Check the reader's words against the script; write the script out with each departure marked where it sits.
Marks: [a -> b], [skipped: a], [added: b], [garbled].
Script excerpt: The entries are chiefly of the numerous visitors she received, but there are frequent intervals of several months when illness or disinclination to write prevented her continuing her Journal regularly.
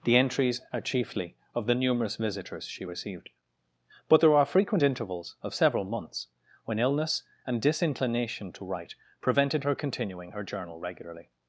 The entries are chiefly of the numerous visitors she received, but there are frequent intervals of several months when illness [or -> and] disinclination to write prevented her continuing her Journal regularly.